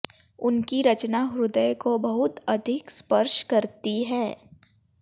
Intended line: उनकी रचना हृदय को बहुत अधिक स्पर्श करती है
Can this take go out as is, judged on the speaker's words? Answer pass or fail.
pass